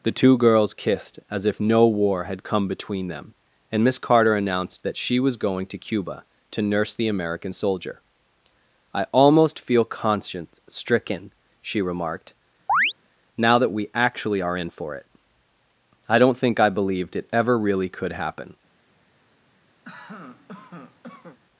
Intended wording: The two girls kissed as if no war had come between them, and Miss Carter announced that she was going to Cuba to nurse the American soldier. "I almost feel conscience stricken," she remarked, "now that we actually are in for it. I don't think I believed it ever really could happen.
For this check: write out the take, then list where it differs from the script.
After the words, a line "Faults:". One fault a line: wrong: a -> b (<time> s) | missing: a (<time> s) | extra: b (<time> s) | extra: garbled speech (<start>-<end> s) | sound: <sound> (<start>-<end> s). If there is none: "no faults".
The two girls kissed as if no war had come between them, and Miss Carter announced that she was going to Cuba to nurse the American soldier. "I almost feel conscience stricken," she remarked, "now that we actually are in for it. I don't think I believed it ever really could happen.
Faults:
sound: chirp (12.7-12.9 s)
sound: cough (19.8-21.4 s)